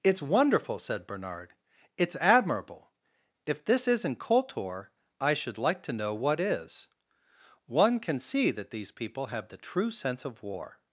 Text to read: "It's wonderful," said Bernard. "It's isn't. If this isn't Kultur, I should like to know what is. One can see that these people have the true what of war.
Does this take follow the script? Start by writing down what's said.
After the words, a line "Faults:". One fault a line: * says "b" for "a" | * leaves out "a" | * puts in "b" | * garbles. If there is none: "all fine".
"It's wonderful," said Bernard. "It's admirable. If this isn't Kultur, I should like to know what is. One can see that these people have the true sense of war.
Faults:
* says "admirable" for "isn't"
* says "sense" for "what"